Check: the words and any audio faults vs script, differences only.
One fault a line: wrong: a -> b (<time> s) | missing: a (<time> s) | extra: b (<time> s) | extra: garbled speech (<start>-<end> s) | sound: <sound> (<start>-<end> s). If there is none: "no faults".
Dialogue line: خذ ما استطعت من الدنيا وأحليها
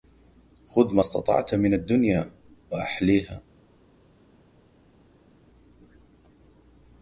no faults